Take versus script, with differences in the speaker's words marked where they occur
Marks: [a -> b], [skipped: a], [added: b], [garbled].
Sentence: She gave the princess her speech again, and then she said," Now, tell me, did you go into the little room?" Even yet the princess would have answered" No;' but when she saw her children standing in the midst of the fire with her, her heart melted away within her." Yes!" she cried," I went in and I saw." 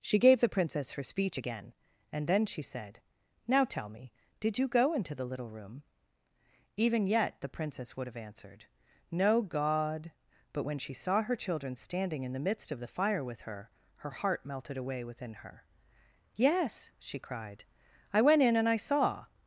She gave the princess her speech again, and then she said," Now, tell me, did you go into the little room?" Even yet the princess would have answered" No;' [added: god] but when she saw her children standing in the midst of the fire with her, her heart melted away within her." Yes!" she cried," I went in and I saw."